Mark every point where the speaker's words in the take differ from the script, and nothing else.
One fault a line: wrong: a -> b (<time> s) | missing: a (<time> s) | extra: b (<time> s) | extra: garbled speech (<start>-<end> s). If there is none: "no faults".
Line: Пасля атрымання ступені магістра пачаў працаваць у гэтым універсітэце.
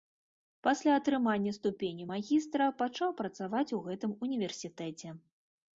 no faults